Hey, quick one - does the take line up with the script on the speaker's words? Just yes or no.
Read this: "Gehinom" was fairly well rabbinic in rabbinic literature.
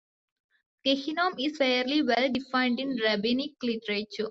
no